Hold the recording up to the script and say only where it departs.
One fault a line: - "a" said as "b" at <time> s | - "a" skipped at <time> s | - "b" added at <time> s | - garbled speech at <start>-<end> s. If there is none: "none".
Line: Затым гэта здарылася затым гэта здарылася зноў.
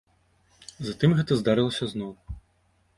- "затым гэта здарылася" skipped at 1.9 s